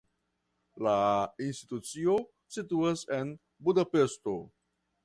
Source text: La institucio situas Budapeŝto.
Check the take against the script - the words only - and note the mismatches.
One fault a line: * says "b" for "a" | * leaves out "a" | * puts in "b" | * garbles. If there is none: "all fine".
* puts in "en"